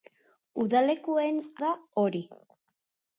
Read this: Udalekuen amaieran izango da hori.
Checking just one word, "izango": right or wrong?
wrong